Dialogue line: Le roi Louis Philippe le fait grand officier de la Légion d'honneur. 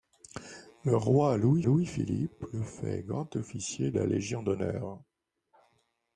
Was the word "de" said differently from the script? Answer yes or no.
yes